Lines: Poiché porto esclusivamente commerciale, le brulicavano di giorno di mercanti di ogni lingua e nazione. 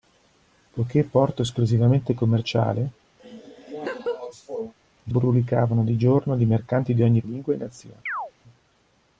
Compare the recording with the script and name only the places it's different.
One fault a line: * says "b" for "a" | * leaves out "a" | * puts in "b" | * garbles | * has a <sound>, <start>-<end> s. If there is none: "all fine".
* has a laugh, 3.2-4.7 s
* has a chirp, 8.1-8.3 s